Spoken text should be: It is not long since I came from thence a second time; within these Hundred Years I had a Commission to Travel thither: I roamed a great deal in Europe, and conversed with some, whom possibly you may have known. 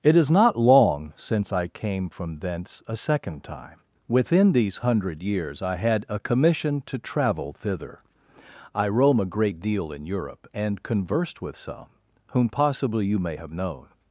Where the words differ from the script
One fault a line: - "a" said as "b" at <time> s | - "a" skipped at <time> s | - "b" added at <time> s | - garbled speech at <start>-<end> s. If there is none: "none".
- "roamed" said as "roam" at 8.9 s